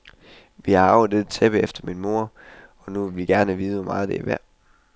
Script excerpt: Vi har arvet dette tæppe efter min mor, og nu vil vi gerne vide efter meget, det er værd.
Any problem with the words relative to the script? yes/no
yes